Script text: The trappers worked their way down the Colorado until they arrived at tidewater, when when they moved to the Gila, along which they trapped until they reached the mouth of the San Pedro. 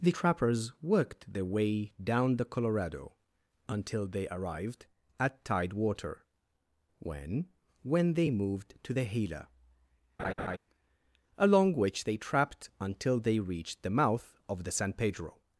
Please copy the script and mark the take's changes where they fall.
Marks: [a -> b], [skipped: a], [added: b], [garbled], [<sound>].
The trappers worked their way down the Colorado until they arrived at tidewater, when when they moved to the Gila, [laugh] along which they trapped until they reached the mouth of the San Pedro.